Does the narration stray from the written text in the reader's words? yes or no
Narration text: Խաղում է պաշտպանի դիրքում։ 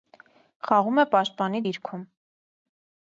no